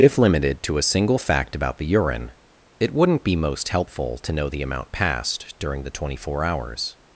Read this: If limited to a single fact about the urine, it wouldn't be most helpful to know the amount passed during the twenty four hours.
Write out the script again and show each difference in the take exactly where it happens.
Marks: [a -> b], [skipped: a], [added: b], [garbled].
If limited to a single fact about the urine, it wouldn't be most helpful to know the amount passed during the twenty four hours.